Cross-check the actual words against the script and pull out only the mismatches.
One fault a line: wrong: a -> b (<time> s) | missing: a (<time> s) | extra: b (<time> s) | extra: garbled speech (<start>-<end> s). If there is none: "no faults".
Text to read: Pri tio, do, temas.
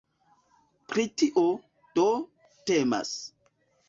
no faults